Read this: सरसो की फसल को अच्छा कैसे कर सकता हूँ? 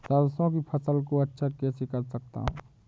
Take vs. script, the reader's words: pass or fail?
pass